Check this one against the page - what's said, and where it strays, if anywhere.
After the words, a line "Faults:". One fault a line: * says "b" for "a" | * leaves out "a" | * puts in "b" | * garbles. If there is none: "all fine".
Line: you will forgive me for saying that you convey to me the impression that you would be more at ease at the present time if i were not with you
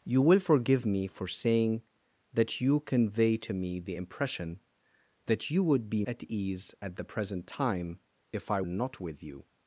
you will forgive me for saying that you convey to me the impression that you would be at ease at the present time if i not with you
Faults:
* leaves out "more"
* leaves out "were"